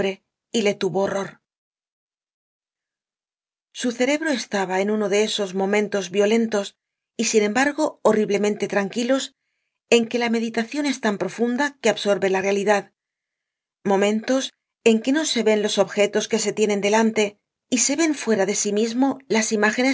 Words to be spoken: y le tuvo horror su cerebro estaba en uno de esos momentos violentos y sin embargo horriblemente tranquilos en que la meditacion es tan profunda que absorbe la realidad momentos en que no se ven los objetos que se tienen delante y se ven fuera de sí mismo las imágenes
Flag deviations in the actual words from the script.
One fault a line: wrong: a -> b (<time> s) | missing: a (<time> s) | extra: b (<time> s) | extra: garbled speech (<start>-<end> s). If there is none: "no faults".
no faults